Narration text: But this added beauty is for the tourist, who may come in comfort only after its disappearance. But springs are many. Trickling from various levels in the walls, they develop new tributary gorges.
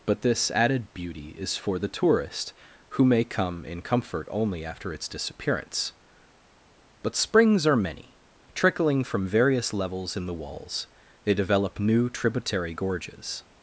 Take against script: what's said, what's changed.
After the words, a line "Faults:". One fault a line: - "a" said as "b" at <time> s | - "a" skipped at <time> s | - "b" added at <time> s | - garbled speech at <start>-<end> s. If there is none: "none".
But this added beauty is for the tourist, who may come in comfort only after its disappearance. But springs are many. Trickling from various levels in the walls, they develop new tributary gorges.
Faults:
none